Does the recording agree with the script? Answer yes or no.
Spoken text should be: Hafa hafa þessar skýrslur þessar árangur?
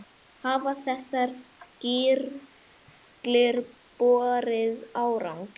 no